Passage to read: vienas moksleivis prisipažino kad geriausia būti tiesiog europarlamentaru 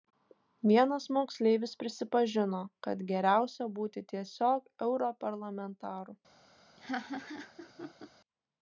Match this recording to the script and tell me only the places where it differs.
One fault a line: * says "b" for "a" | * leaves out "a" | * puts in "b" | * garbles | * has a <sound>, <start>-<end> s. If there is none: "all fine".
* has a laugh, 6.8-8.1 s